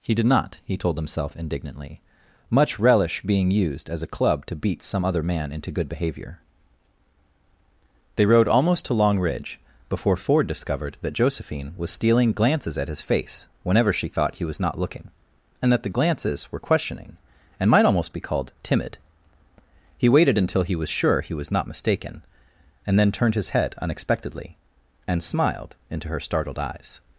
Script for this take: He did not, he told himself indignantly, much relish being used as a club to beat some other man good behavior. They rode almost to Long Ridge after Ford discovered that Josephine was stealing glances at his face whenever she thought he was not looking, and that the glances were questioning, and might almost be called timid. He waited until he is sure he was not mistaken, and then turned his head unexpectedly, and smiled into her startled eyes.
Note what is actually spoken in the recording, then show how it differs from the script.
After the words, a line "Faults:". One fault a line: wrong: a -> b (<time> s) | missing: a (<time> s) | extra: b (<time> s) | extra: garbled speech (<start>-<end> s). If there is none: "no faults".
He did not, he told himself indignantly, much relish being used as a club to beat some other man into good behavior. They rode almost to Long Ridge before Ford discovered that Josephine was stealing glances at his face whenever she thought he was not looking, and that the glances were questioning, and might almost be called timid. He waited until he was sure he was not mistaken, and then turned his head unexpectedly, and smiled into her startled eyes.
Faults:
extra: into (5.5 s)
wrong: after -> before (9.9 s)
wrong: is -> was (20.8 s)